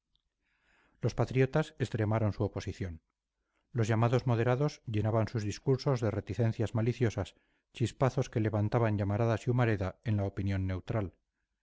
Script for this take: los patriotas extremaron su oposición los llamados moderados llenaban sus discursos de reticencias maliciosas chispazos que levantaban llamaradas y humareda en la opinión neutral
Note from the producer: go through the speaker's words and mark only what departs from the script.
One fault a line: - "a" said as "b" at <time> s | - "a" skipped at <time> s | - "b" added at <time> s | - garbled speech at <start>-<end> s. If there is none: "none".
none